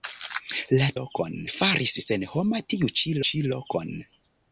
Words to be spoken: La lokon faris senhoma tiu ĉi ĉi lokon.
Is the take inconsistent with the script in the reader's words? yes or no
no